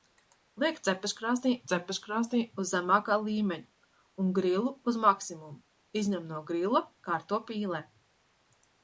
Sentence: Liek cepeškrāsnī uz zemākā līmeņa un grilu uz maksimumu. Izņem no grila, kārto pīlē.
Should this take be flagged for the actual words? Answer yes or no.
yes